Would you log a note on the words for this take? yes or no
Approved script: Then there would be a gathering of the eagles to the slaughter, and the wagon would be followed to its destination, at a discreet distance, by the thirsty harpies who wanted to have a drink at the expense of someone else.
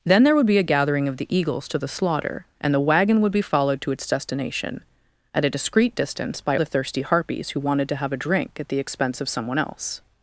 no